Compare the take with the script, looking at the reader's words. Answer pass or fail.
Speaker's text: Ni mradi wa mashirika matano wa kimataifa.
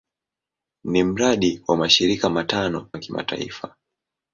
pass